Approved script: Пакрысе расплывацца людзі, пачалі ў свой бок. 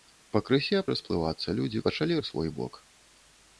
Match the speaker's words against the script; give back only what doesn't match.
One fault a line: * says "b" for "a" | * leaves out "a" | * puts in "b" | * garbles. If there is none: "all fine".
all fine